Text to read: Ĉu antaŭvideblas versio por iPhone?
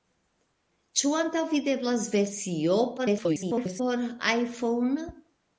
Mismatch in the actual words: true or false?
true